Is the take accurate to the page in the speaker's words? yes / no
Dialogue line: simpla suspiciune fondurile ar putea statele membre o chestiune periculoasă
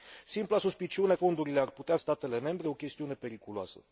yes